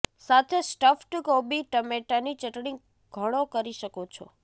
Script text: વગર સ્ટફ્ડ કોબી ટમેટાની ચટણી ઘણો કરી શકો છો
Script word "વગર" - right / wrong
wrong